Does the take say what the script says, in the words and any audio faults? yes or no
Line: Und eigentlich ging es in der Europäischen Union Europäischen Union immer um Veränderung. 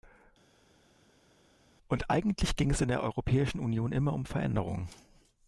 no